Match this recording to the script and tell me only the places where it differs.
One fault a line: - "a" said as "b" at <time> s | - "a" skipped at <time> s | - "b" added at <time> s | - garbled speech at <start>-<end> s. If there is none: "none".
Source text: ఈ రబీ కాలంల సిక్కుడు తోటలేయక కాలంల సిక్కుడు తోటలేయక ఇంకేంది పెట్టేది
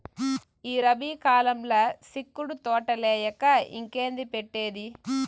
- "కాలంల సిక్కుడు తోటలేయక" skipped at 3.4 s